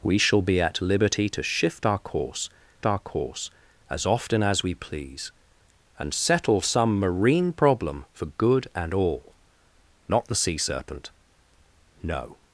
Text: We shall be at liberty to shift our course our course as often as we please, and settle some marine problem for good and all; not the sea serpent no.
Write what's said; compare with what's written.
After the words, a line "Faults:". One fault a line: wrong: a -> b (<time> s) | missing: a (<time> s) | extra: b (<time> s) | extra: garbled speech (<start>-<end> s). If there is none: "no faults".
We shall be at liberty to shift our course our course as often as we please, and settle some marine problem for good and all; not the sea serpent no.
Faults:
no faults